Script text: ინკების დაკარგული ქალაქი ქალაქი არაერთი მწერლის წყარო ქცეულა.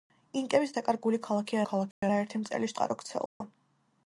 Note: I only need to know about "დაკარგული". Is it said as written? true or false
true